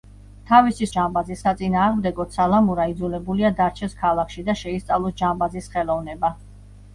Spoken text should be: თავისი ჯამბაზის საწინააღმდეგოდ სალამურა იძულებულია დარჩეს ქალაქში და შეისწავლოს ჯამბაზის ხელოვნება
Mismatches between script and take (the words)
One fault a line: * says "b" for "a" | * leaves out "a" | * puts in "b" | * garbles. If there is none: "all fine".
all fine